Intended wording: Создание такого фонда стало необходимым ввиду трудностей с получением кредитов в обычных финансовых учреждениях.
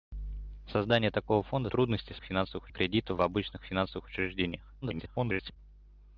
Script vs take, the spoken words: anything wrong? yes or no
yes